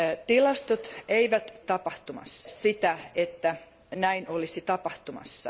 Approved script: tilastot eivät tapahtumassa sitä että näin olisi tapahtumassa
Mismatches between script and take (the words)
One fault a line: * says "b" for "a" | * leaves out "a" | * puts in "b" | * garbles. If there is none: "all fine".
all fine